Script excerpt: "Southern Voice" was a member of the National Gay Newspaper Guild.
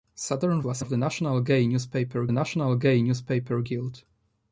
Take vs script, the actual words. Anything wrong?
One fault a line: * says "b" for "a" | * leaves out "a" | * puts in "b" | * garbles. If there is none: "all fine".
* leaves out "Voice"
* leaves out "member"
* puts in "National Gay Newspaper"